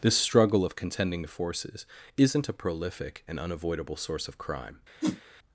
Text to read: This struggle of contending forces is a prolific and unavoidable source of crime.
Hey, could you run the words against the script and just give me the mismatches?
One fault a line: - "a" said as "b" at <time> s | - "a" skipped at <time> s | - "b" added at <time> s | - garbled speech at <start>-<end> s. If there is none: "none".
- "is" said as "isn't" at 2.2 s